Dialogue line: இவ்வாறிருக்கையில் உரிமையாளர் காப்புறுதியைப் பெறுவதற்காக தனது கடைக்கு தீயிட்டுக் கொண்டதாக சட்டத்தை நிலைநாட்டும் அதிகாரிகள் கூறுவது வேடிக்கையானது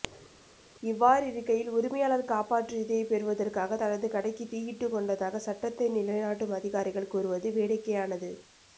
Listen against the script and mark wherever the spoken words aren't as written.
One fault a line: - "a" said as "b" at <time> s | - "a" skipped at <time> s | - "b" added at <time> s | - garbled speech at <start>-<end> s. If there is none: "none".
none